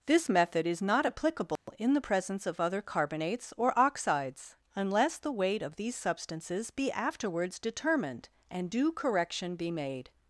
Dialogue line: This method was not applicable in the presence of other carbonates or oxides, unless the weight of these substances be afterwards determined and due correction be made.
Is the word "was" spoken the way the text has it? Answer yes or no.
no